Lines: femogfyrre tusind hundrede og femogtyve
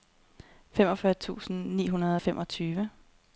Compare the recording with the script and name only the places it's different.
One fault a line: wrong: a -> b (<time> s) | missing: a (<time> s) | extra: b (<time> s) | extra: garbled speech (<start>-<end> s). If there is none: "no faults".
extra: ni (1.8 s)